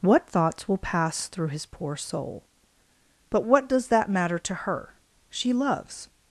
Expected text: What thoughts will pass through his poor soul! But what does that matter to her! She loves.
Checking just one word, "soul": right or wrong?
right